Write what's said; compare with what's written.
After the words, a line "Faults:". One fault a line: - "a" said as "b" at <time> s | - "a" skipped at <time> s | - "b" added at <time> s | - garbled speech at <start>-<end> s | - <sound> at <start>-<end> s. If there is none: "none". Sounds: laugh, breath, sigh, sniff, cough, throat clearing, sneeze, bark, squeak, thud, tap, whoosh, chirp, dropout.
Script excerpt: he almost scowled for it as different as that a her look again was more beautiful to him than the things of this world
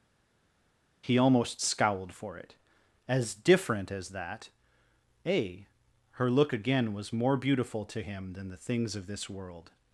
he almost scowled for it as different as that a her look again was more beautiful to him than the things of this world
Faults:
none